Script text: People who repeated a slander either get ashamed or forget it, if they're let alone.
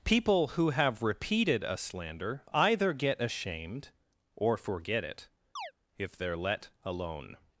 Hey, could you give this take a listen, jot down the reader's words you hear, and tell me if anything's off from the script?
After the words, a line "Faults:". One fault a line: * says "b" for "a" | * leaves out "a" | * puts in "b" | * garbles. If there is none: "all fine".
People who have repeated a slander either get ashamed or forget it, if they're let alone.
Faults:
* puts in "have"